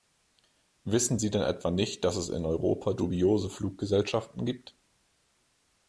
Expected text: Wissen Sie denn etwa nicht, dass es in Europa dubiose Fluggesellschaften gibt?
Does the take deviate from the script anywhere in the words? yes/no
no